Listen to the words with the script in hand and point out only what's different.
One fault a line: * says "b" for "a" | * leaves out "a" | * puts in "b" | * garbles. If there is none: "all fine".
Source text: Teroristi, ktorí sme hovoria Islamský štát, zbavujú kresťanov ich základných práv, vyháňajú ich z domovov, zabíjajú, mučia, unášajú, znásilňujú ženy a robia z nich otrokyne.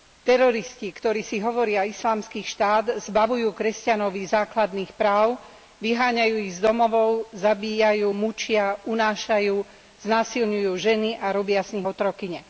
* says "si" for "sme"